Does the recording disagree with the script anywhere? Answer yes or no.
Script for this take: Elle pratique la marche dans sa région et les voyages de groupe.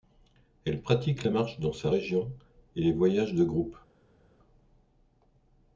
no